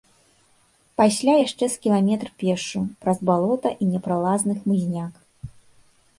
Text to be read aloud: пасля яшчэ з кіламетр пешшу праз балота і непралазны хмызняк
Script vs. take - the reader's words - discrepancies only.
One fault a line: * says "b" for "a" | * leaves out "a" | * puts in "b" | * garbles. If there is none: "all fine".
all fine